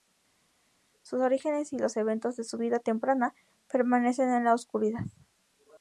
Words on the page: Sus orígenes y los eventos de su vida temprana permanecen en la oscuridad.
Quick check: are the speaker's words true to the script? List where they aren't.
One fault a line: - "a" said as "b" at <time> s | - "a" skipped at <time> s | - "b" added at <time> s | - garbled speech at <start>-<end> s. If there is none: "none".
none